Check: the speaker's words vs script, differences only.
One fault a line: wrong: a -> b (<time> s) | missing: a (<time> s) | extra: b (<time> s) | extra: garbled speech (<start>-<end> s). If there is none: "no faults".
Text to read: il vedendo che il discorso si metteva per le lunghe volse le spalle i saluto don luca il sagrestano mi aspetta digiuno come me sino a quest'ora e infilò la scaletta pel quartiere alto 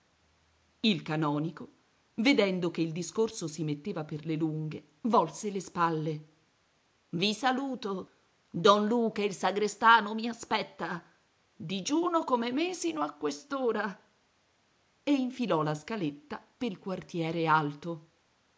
extra: canonico (1.0 s)